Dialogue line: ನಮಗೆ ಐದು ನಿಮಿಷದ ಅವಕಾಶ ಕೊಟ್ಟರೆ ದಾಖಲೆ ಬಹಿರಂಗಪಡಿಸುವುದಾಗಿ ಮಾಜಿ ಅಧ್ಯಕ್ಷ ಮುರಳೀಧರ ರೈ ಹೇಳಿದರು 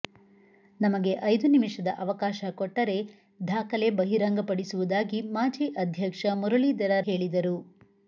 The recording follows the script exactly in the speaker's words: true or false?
false